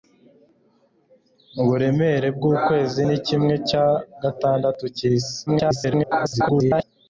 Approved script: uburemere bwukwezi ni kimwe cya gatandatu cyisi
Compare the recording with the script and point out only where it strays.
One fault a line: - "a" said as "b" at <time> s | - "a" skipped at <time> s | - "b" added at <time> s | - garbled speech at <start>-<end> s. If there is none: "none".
- garbled speech at 5.5-6.8 s